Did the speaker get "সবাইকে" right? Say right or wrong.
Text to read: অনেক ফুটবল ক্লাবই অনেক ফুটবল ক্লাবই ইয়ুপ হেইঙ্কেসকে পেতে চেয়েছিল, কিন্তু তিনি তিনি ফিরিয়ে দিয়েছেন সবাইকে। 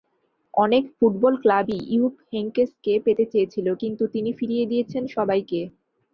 right